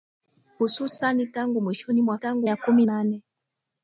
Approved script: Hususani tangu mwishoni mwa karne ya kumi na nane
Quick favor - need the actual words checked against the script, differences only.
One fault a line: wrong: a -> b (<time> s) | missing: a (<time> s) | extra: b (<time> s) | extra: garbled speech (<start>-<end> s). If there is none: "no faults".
wrong: karne -> tangu (2.1 s)
missing: na (2.9 s)